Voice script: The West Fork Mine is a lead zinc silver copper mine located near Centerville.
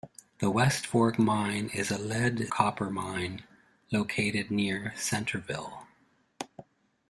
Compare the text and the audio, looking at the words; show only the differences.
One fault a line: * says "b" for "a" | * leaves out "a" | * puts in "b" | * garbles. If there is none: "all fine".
* leaves out "zinc silver"